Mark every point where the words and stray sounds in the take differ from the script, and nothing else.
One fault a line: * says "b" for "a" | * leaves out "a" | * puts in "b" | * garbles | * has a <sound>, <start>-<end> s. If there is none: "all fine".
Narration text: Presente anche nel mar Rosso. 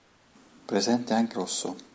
* leaves out "nel mar"